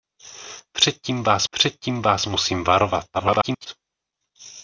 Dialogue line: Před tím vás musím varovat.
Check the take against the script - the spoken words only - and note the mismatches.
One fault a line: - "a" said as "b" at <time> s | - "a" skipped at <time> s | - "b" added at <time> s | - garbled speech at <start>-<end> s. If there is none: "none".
- "před tím vás" added at 1.5 s
- garbled speech at 3.1-3.7 s